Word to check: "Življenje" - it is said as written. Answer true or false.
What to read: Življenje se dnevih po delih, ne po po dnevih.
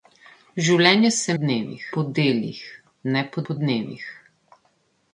true